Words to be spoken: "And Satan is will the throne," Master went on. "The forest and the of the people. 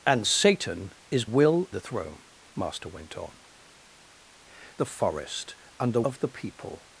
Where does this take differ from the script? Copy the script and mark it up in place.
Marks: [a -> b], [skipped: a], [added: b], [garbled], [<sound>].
"And Satan is will the throne," Master went on. "The forest and the of the people.